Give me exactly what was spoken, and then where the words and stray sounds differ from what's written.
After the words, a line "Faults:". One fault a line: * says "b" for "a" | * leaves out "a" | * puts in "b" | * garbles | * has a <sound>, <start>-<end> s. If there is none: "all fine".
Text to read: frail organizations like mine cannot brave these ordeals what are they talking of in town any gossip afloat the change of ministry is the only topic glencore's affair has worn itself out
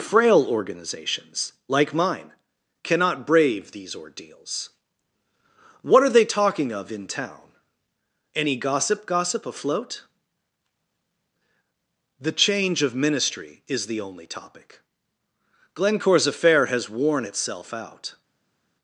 frail organizations like mine cannot brave these ordeals what are they talking of in town any gossip gossip afloat the change of ministry is the only topic glencore's affair has worn itself out
Faults:
* puts in "gossip"